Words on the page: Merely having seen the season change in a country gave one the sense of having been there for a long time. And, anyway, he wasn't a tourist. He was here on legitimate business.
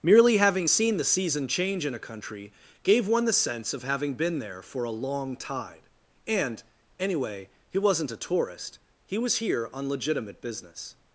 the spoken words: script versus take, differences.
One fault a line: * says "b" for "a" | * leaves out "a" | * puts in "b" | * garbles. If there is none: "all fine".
* says "tide" for "time"